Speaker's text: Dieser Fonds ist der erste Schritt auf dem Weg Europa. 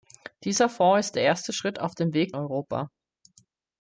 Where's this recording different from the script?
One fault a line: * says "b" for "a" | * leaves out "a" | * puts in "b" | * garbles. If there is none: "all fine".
all fine